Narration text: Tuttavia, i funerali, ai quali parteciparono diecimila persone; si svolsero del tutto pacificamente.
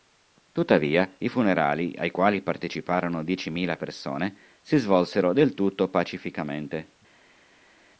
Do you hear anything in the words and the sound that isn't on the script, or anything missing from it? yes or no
no